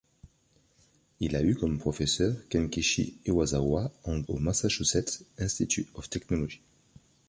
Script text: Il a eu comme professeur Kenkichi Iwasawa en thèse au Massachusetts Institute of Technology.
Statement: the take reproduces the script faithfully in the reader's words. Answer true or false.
false